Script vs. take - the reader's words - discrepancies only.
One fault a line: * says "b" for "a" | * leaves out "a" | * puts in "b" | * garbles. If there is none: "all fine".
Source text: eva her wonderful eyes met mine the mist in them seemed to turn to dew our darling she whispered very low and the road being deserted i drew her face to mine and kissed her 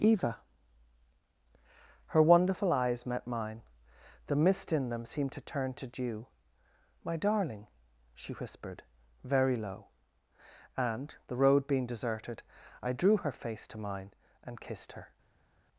* says "my" for "our"